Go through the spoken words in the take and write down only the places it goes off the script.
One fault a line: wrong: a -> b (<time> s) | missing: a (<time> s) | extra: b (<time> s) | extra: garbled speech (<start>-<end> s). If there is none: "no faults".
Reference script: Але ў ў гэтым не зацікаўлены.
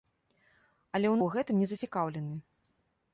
no faults